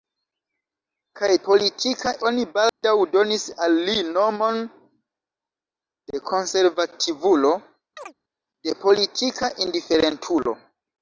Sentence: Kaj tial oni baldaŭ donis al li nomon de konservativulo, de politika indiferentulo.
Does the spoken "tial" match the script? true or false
false